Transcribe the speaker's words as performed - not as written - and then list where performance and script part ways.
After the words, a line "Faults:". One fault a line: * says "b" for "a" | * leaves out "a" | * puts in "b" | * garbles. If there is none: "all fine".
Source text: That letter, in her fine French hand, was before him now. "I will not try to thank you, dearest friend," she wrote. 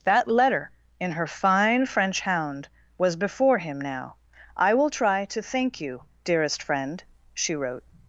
That letter, in her fine French hound, was before him now. "I will try to thank you, dearest friend," she wrote.
Faults:
* says "hound" for "hand"
* leaves out "not"